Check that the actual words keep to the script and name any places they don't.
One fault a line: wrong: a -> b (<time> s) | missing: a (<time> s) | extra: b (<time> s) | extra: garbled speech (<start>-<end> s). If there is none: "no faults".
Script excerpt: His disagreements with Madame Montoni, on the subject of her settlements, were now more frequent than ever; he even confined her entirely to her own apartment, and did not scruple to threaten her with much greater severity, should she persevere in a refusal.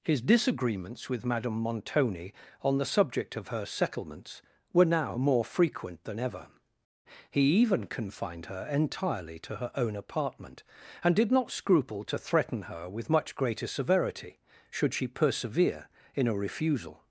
no faults